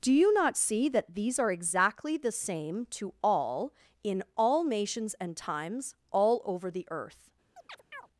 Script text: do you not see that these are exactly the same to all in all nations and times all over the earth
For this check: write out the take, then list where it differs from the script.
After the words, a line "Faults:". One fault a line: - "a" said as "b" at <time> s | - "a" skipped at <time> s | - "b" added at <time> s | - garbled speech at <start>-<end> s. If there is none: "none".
do you not see that these are exactly the same to all in all nations and times all over the earth
Faults:
none